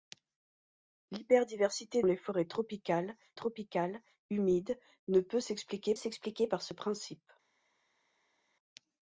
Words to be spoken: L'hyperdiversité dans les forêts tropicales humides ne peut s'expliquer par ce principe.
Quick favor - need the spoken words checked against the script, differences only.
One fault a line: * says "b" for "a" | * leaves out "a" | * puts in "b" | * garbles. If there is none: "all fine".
* leaves out "dans"
* puts in "tropicales"
* puts in "s'expliquer"